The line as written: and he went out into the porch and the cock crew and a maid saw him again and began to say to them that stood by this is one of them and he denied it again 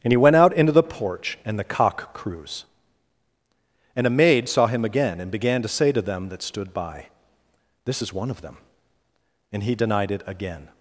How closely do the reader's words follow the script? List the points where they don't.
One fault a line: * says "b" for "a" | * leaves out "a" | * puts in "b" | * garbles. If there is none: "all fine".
* says "crews" for "crew"